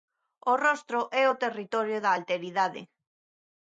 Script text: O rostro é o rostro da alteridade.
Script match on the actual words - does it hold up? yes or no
no